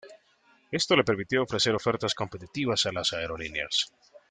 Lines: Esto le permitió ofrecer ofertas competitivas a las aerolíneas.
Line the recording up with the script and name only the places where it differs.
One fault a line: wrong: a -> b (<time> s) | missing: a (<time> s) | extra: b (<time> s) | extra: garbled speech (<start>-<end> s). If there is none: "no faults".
no faults